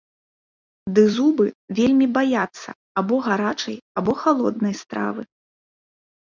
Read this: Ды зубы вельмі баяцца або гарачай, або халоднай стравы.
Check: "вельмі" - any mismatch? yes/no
no